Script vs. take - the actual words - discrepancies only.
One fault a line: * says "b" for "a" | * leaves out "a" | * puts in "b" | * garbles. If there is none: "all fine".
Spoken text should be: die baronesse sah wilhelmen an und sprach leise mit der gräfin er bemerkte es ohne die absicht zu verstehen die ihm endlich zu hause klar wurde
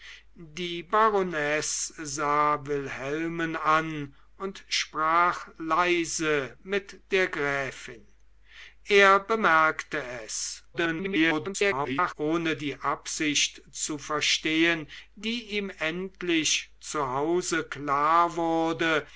* garbles